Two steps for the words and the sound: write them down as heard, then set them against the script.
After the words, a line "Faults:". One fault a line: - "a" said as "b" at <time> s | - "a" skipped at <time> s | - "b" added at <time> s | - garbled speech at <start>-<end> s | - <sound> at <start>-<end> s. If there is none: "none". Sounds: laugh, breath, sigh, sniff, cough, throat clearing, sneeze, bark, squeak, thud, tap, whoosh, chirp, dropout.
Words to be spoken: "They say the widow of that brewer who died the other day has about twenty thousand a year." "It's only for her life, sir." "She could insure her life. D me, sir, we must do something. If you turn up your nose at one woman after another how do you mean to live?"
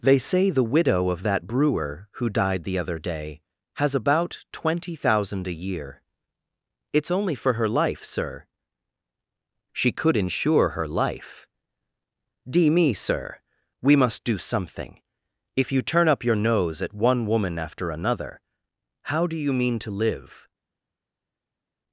"They say the widow of that brewer who died the other day has about twenty thousand a year." "It's only for her life, sir." "She could insure her life. D me, sir, we must do something. If you turn up your nose at one woman after another how do you mean to live?"
Faults:
none